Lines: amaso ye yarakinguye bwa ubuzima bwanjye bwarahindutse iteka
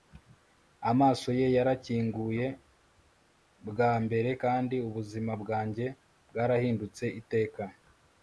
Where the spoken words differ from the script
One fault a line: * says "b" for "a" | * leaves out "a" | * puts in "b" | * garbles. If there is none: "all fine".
* puts in "mbere kandi"